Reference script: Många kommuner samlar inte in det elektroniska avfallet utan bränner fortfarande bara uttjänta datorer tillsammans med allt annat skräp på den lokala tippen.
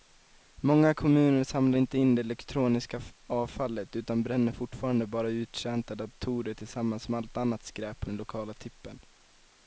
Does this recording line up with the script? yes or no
yes